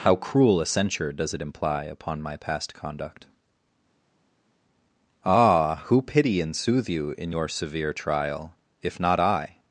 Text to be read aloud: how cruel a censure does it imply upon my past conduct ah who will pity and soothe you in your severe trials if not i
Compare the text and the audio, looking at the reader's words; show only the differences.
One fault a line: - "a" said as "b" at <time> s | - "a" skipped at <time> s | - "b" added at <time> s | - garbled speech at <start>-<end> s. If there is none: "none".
- "will" skipped at 6.0 s
- "trials" said as "trial" at 7.9 s